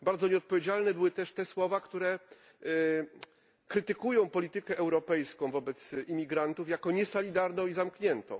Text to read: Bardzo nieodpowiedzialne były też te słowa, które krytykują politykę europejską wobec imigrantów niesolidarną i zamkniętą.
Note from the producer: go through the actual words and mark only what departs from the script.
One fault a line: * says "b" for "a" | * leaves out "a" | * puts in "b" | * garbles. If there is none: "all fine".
* puts in "jako"